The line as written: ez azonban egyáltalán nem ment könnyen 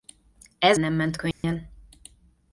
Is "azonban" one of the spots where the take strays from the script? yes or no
yes